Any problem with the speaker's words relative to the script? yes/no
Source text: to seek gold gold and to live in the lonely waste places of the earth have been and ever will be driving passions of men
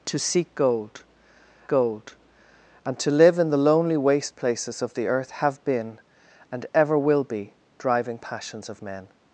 no